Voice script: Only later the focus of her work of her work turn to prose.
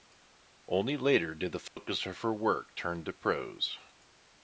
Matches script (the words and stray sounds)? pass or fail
fail